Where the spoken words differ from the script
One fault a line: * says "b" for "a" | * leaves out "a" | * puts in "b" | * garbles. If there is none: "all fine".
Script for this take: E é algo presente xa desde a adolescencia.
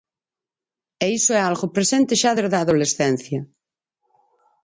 * puts in "iso"